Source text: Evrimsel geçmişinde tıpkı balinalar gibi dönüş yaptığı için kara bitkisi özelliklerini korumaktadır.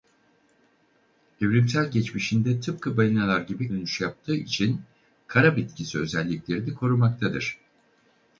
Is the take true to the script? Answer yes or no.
yes